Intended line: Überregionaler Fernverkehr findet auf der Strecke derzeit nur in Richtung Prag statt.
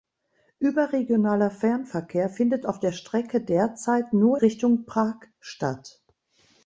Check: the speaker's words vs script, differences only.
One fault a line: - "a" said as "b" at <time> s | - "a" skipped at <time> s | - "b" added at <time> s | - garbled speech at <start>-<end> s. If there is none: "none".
- "in" skipped at 4.4 s